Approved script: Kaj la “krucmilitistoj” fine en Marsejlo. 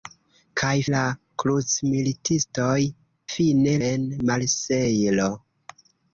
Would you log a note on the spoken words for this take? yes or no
no